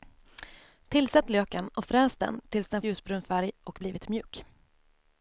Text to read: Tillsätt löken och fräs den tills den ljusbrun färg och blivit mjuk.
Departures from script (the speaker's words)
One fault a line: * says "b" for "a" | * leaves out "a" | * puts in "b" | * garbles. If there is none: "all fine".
all fine